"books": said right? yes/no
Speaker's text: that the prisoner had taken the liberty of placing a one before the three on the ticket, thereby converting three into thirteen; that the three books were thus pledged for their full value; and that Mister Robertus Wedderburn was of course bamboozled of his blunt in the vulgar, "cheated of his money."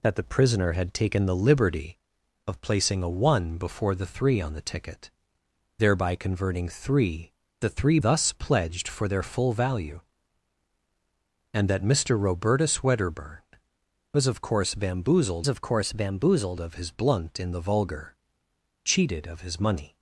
no